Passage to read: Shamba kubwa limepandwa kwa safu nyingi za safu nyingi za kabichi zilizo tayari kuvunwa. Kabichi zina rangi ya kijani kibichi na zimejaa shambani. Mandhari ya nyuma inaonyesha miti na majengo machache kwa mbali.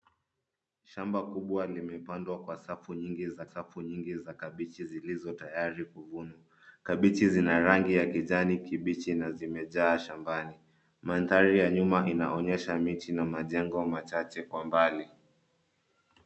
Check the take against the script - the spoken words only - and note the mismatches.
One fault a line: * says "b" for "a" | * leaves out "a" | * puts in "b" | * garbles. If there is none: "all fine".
all fine